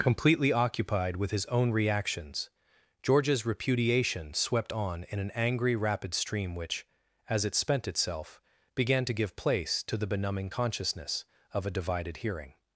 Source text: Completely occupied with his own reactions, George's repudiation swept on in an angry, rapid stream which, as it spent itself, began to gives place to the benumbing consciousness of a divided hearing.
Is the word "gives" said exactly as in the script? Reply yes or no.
no